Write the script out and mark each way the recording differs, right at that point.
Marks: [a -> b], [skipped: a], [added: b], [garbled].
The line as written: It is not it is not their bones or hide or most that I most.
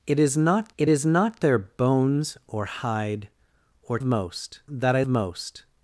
It is not it is not their bones or hide or most that I most.